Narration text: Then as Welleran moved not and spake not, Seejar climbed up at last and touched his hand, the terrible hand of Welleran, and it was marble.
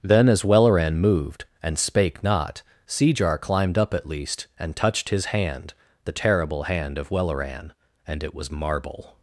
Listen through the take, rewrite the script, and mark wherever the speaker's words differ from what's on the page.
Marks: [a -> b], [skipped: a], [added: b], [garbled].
Then as Welleran moved [skipped: not] and spake not, Seejar climbed up at [last -> least] and touched his hand, the terrible hand of Welleran, and it was marble.